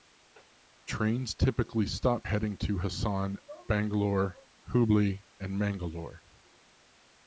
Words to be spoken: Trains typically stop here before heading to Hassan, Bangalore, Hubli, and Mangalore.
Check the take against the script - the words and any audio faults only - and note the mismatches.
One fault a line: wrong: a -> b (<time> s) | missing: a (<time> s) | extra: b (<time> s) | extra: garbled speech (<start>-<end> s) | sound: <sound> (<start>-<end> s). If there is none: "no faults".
missing: here before (2.3 s)